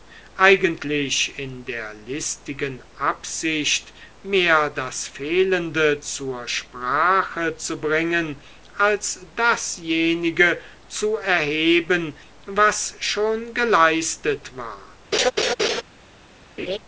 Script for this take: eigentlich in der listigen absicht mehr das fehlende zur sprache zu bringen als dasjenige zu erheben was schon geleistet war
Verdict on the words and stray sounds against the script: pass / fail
fail